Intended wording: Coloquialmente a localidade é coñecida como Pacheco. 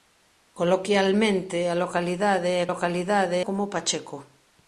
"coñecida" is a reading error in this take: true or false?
true